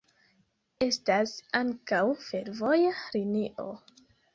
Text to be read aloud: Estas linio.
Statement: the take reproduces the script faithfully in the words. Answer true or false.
false